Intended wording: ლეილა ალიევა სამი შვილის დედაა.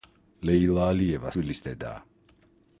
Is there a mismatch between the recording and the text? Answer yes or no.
yes